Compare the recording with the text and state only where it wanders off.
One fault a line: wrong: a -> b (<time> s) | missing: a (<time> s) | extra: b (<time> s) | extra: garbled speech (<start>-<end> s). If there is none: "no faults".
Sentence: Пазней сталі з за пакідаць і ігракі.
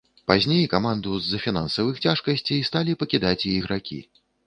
wrong: сталі -> каманду (0.7 s)
extra: фінансавых цяжкасцей сталі (1.4 s)